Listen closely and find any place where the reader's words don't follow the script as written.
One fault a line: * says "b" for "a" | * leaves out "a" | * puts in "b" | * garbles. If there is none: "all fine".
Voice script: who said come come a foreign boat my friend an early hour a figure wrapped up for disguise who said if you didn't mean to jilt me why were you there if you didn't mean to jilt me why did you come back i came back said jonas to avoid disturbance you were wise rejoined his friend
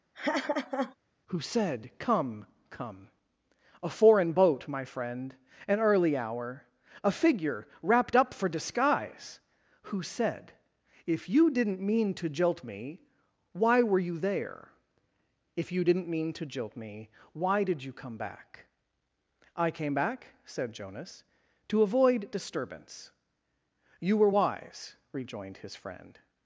all fine